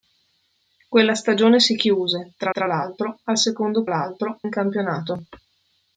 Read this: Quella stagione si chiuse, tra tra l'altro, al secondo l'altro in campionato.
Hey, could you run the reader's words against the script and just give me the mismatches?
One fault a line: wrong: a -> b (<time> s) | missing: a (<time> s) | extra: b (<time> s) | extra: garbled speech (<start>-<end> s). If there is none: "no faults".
no faults